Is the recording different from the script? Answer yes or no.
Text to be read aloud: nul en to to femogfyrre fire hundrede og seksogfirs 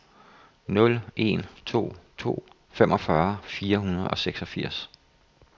no